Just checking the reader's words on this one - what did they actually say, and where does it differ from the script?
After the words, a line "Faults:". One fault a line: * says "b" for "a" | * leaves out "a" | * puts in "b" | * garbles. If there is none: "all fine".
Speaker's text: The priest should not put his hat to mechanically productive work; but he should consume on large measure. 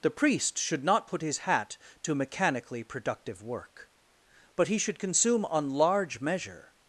The priest should not put his hat to mechanically productive work; but he should consume on large measure.
Faults:
all fine